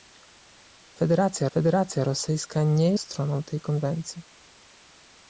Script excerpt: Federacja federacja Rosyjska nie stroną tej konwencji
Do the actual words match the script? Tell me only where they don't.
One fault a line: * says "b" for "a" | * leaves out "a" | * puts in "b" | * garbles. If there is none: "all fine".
all fine